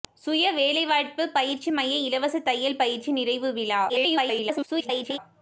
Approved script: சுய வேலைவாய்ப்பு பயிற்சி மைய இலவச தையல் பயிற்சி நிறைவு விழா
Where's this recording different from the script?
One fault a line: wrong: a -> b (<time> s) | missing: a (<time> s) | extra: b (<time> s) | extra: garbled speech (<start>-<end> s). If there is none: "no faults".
extra: garbled speech (3.9-5.2 s)